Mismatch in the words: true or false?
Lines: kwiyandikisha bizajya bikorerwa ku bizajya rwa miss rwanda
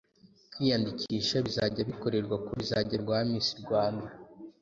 false